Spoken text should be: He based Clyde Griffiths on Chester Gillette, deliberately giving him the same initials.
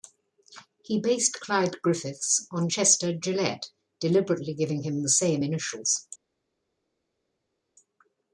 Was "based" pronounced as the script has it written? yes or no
yes